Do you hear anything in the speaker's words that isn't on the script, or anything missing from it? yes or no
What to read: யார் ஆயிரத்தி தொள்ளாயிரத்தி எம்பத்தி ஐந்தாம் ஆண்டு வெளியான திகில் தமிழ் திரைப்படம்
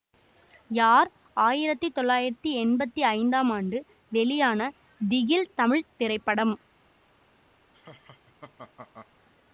no